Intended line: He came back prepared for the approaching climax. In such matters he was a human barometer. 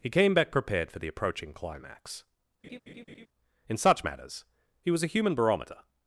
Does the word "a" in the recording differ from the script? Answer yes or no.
no